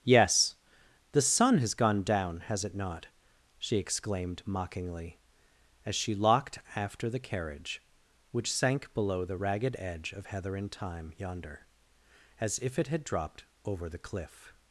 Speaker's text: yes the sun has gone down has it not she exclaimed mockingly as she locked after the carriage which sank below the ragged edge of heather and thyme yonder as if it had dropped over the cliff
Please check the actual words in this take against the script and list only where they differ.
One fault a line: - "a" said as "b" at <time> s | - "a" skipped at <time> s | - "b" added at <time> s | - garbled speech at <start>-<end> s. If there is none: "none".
none